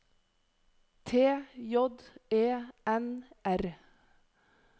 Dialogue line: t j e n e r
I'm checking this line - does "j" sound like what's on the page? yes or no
yes